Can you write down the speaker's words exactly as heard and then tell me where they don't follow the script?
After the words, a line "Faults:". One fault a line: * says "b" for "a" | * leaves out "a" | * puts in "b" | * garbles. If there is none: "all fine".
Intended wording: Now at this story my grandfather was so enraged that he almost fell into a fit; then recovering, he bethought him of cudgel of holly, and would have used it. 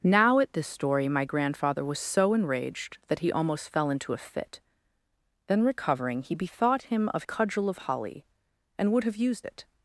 Now at this story my grandfather was so enraged that he almost fell into a fit; then recovering, he bethought him of cudgel of holly, and would have used it.
Faults:
all fine